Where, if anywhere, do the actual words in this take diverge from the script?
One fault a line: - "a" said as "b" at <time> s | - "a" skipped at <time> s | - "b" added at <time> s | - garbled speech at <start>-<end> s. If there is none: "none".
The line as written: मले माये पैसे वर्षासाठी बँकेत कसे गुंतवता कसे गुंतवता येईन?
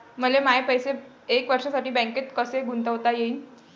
- "एक" added at 1.3 s
- "कसे गुंतवता" skipped at 3.1 s